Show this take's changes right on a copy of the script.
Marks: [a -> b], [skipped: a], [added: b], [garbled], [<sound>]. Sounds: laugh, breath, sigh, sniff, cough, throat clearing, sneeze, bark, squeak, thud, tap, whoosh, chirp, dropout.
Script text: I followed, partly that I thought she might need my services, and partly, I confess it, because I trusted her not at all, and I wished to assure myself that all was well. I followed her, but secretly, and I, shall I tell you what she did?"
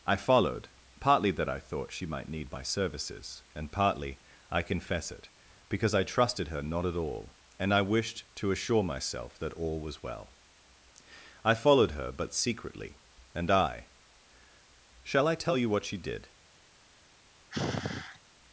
I followed, partly that I thought she might need my services, and partly, I confess it, because I trusted her not at all, and I wished to assure myself that all was well. I followed her, but secretly, and I, shall I tell you what she did?" [sigh]